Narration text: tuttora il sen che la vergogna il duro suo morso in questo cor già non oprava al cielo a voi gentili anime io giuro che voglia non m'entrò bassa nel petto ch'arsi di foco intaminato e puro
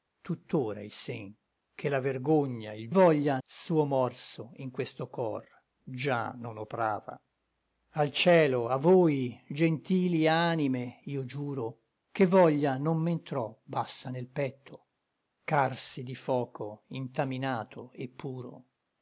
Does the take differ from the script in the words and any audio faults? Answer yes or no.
yes